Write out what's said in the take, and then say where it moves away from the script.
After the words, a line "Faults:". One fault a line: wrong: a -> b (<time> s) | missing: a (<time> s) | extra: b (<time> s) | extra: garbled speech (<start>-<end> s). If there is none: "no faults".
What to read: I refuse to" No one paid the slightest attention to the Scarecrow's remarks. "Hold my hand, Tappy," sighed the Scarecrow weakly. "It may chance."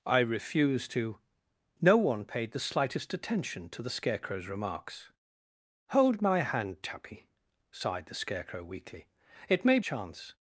I refuse to" No one paid the slightest attention to the Scarecrow's remarks. "Hold my hand, Tappy," sighed the Scarecrow weakly. "It may chance."
Faults:
no faults